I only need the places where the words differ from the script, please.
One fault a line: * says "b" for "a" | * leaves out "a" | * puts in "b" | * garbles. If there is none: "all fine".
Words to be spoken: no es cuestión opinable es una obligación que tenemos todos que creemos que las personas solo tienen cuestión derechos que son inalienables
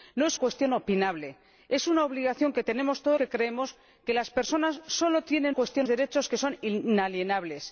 all fine